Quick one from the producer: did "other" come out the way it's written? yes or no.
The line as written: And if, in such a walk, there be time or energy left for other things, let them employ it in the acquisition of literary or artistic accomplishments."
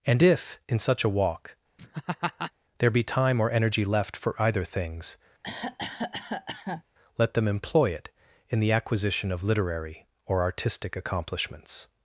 no